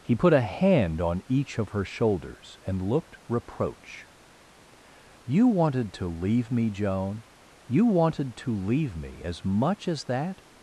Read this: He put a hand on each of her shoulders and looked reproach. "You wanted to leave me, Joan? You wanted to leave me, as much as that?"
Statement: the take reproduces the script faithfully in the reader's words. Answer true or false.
true